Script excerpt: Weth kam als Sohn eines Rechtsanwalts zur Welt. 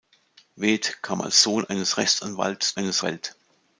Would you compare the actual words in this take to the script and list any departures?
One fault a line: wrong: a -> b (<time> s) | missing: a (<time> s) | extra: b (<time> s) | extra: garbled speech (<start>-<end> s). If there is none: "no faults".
wrong: zur -> eines (2.7 s)